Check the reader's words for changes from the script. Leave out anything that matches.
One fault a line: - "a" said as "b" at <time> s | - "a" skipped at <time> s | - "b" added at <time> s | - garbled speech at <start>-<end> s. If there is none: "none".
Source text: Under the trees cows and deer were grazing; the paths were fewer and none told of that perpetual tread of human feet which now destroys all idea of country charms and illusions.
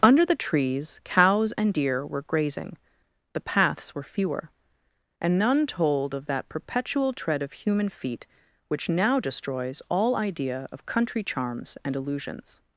none